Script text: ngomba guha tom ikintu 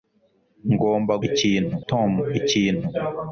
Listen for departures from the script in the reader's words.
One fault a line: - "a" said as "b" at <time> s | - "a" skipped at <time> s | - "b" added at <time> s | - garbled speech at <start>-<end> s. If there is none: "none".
- "guha" said as "ikintu" at 1.3 s